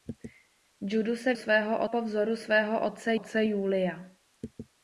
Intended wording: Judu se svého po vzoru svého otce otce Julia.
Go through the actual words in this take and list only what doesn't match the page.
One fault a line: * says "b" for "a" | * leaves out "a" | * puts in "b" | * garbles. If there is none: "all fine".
all fine